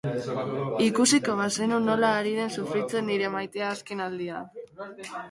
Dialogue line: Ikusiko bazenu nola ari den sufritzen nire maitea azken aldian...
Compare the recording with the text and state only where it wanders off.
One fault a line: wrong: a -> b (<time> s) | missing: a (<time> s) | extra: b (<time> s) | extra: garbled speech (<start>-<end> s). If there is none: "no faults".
no faults